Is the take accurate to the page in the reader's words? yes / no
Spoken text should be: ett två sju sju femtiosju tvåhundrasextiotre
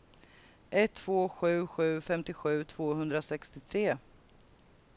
yes